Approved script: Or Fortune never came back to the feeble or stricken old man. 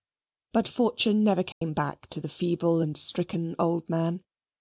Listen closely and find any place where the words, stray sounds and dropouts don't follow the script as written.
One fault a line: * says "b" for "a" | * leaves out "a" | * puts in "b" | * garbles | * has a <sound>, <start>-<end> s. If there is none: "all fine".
* says "But" for "Or"
* has a dropout, 1.5-1.6 s
* says "and" for "or"